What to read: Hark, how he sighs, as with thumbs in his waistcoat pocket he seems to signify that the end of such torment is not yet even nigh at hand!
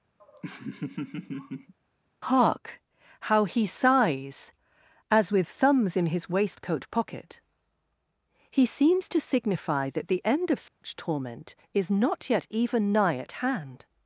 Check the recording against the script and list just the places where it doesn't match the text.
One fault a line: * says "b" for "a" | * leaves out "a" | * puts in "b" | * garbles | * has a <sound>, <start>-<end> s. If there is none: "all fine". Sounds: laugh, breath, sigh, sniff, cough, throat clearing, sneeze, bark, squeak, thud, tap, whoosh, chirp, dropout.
* has a laugh, 0.2-1.7 s
* has a dropout, 10.7-10.8 s